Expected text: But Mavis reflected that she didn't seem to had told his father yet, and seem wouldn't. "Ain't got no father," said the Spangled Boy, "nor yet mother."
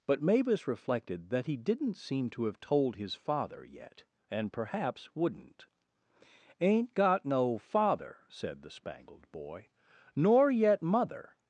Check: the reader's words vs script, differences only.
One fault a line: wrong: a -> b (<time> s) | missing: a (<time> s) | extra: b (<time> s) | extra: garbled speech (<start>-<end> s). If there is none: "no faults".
wrong: she -> he (1.4 s)
wrong: had -> have (2.5 s)
wrong: seem -> perhaps (4.5 s)